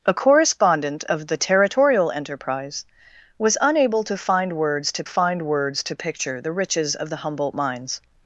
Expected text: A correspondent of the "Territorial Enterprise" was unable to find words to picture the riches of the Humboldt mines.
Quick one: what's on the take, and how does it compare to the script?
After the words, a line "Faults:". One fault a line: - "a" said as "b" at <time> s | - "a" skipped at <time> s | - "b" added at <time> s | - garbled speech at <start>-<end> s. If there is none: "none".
A correspondent of the "Territorial Enterprise" was unable to find words to find words to picture the riches of the Humboldt mines.
Faults:
- "find words to" added at 5.0 s